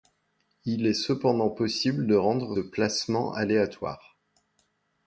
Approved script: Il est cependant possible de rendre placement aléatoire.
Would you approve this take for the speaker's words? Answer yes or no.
yes